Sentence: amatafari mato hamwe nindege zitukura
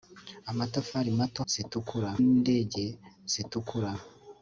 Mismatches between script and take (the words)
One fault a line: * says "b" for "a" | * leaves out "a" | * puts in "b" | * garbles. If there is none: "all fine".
* says "zitukura" for "hamwe"